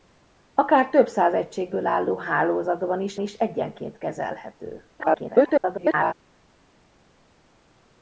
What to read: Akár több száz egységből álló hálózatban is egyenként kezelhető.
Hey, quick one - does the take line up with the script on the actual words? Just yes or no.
no